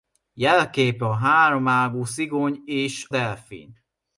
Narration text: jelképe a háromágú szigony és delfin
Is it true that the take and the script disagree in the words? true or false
false